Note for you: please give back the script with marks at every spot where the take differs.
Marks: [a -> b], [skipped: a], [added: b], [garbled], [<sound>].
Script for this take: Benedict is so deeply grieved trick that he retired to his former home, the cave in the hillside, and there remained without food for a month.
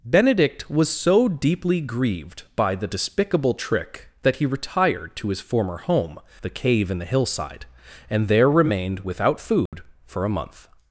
Benedict [is -> was] so deeply grieved [added: by the despicable] trick that he retired to his former home, the cave in the hillside, and there remained without food [dropout] for a month.